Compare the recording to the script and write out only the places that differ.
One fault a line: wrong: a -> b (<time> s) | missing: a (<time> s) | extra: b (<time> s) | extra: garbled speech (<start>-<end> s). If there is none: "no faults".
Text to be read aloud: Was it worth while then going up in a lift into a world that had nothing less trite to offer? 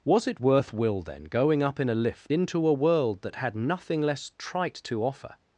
wrong: while -> will (0.7 s)